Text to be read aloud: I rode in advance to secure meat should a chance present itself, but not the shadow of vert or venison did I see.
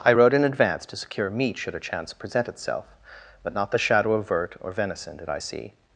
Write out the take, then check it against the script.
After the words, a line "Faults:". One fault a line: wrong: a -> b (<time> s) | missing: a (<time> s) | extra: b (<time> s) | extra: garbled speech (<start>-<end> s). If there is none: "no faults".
I rode in advance to secure meat should a chance present itself, but not the shadow of vert or venison did I see.
Faults:
no faults